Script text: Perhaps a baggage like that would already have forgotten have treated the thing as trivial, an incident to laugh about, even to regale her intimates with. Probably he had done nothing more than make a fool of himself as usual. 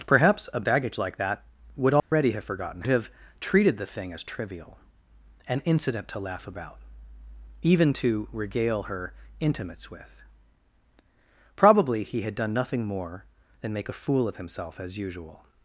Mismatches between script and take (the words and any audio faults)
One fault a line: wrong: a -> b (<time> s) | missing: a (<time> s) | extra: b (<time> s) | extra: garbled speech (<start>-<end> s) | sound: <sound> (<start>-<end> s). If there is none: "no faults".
sound: dropout (2.0-2.1 s)